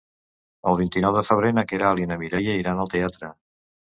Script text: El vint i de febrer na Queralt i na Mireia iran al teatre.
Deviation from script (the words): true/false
true